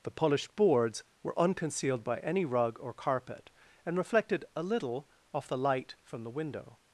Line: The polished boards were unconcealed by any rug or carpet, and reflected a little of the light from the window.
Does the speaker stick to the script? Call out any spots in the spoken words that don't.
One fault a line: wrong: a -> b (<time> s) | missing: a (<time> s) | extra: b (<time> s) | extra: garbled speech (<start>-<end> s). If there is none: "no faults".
wrong: of -> off (5.3 s)